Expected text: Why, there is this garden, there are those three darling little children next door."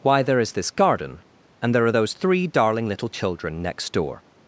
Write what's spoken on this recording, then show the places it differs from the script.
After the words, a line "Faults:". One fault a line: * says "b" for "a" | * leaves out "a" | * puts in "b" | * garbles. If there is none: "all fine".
Why, there is this garden, and there are those three darling little children next door."
Faults:
* puts in "and"